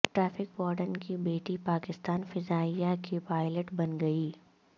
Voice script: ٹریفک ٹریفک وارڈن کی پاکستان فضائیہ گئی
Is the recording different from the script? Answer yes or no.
yes